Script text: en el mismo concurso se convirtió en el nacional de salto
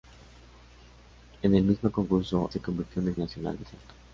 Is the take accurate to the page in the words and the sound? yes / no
yes